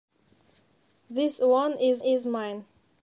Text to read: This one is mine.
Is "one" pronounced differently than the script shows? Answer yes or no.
no